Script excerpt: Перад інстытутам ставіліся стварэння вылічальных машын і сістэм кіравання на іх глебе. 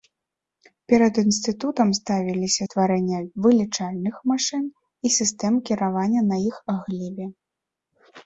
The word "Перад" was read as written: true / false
true